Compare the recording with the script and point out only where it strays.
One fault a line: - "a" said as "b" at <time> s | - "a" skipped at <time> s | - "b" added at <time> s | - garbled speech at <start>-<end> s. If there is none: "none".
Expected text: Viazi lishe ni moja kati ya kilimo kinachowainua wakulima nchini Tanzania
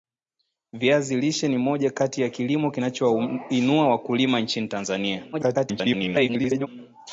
- garbled speech at 5.3-6.7 s